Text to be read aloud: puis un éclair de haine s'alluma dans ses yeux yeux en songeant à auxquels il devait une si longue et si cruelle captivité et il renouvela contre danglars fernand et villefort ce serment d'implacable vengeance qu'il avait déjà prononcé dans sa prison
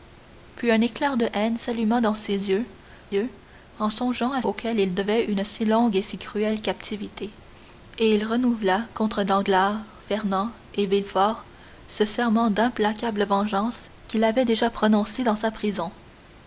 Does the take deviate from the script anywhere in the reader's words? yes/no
no